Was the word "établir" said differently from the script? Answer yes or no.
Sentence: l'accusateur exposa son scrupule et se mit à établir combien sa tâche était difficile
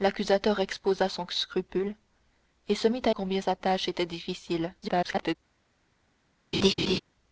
yes